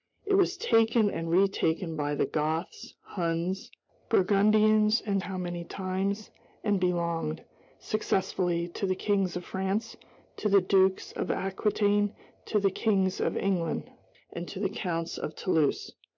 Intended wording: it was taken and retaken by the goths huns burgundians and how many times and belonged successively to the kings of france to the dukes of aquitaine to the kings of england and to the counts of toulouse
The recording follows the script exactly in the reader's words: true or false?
true